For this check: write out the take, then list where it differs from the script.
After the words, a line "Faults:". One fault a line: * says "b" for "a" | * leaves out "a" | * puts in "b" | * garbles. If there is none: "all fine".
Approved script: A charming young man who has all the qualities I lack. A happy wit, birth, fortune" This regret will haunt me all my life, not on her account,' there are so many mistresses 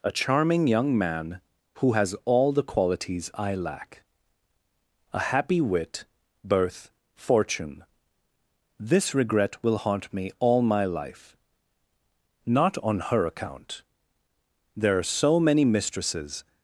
A charming young man who has all the qualities I lack. A happy wit, birth, fortune" This regret will haunt me all my life, not on her account,' there are so many mistresses
Faults:
all fine